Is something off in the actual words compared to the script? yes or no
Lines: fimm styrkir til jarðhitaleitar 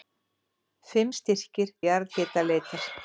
yes